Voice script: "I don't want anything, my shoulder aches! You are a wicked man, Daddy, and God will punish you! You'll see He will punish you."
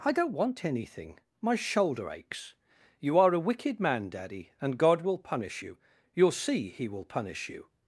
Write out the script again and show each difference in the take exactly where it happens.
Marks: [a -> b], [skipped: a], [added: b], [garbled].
"I don't want anything, my shoulder aches! You are a wicked man, Daddy, and God will punish you! You'll see He will punish you."